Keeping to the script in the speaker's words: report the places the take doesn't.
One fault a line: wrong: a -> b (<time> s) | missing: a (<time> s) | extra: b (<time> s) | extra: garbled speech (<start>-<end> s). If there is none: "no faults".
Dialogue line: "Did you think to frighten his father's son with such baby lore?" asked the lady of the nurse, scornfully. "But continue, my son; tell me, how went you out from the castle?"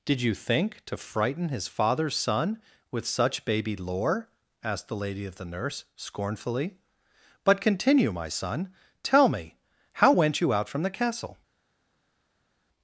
no faults